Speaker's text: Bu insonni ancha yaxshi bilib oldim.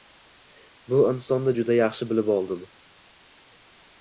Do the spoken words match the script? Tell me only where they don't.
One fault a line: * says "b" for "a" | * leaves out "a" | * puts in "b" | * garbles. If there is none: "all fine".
* says "juda" for "ancha"